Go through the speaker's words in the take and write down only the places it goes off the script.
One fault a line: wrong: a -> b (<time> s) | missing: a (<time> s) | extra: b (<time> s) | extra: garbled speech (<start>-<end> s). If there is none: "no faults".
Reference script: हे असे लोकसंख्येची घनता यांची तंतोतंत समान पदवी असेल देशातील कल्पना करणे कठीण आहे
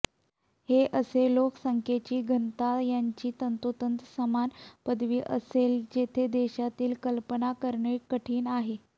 extra: जेथे (5.9 s)